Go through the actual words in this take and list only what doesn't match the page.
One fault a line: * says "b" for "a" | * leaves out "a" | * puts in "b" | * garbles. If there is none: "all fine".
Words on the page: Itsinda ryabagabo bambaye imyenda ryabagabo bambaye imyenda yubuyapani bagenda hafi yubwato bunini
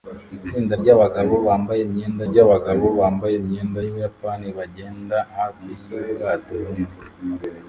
all fine